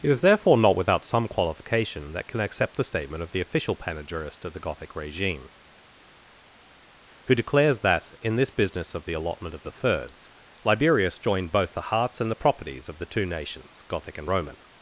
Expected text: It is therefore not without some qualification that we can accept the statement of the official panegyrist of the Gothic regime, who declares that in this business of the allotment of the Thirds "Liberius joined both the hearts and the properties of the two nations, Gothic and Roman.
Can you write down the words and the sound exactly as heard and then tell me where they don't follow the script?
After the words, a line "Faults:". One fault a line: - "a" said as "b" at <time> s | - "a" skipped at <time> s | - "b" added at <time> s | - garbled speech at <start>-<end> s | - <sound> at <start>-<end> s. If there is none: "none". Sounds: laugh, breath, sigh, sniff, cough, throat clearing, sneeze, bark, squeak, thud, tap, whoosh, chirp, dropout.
It is therefore not without some qualification that can accept the statement of the official panegyrist of the Gothic regime, who declares that in this business of the allotment of the Thirds "Liberius joined both the hearts and the properties of the two nations, Gothic and Roman.
Faults:
- "we" skipped at 2.3 s